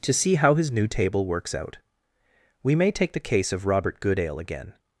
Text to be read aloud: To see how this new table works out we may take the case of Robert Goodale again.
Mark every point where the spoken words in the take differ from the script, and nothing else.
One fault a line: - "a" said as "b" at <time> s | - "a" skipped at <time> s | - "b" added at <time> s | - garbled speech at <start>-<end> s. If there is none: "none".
- "this" said as "his" at 0.6 s